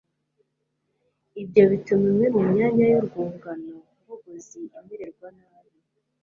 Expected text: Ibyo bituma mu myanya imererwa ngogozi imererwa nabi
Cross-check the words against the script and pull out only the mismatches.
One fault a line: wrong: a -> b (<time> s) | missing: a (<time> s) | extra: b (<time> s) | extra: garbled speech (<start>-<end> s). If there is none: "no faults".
extra: imwe (2.1 s)
wrong: imererwa -> yurwungano (2.9 s)